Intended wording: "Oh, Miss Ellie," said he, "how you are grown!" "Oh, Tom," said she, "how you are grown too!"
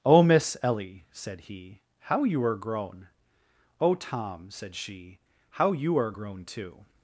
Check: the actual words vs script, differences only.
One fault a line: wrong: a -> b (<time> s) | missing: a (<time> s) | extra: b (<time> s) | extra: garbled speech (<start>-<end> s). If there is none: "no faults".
no faults